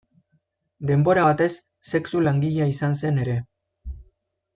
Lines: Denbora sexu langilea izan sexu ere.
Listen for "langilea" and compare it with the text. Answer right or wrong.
right